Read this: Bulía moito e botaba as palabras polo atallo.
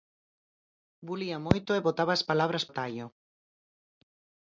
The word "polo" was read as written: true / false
false